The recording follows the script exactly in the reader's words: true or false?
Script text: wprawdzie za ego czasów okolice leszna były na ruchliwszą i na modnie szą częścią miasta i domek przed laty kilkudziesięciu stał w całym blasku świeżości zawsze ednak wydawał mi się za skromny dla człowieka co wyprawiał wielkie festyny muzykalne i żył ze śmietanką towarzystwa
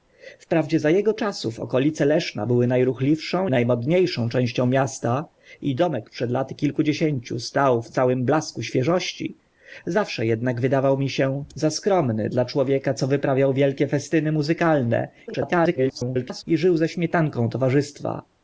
false